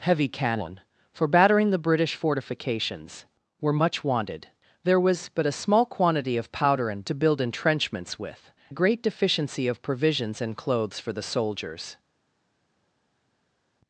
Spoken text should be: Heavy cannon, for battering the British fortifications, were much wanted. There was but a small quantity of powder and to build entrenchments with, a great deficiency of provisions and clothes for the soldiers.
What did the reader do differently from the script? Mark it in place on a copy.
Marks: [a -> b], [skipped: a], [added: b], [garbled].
Heavy cannon, for battering the British fortifications, were much wanted. There was but a small quantity of powder and to build entrenchments with, a great deficiency of provisions and clothes for the soldiers.